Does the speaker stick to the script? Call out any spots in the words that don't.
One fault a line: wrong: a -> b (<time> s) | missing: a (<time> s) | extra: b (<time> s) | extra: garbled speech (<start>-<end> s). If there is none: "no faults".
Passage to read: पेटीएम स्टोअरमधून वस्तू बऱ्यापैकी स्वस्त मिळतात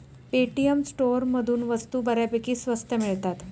no faults